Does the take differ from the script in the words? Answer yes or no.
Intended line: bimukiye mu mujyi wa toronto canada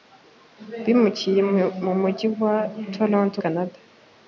no